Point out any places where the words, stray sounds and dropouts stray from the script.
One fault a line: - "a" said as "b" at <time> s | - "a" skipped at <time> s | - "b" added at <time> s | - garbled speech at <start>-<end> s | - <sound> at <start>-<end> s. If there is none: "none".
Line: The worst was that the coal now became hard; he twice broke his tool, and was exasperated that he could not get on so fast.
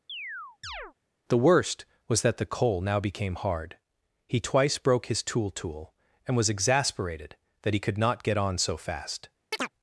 - chirp at 0.1-0.9 s
- "tool" added at 5.5 s
- chirp at 9.5-9.7 s